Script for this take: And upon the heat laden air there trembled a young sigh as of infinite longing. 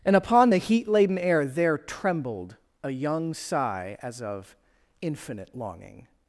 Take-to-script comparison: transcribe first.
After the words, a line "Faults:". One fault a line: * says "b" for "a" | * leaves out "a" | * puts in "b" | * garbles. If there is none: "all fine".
And upon the heat laden air there trembled a young sigh as of infinite longing.
Faults:
all fine